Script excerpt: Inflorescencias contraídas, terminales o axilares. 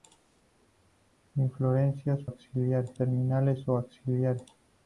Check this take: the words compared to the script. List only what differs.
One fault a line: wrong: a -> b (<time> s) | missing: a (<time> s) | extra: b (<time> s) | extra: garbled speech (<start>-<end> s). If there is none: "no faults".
wrong: contraídas -> axilares (2.2 s)